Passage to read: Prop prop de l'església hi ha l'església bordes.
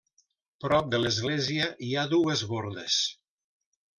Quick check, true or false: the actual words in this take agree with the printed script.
false